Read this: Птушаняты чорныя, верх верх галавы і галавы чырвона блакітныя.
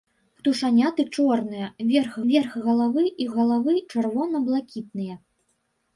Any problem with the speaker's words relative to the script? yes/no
no